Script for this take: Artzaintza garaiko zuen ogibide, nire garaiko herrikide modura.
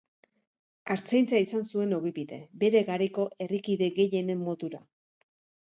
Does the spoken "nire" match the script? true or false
false